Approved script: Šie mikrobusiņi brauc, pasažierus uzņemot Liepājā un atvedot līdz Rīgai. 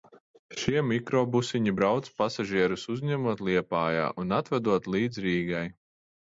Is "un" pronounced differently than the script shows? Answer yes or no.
no